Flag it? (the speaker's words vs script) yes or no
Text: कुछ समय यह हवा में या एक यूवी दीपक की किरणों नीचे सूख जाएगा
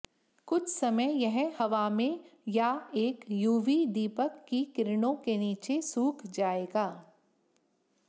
yes